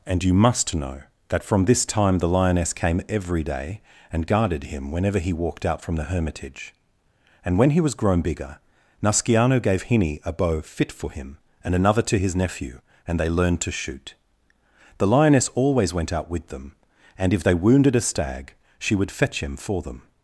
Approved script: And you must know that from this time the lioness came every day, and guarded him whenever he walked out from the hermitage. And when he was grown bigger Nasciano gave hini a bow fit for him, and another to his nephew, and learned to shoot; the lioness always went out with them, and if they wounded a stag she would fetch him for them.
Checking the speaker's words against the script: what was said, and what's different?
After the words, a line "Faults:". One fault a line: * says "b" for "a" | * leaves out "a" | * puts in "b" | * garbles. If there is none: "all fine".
And you must know that from this time the lioness came every day, and guarded him whenever he walked out from the hermitage. And when he was grown bigger Nasciano gave hini a bow fit for him, and another to his nephew, and they learned to shoot; the lioness always went out with them, and if they wounded a stag she would fetch him for them.
Faults:
* puts in "they"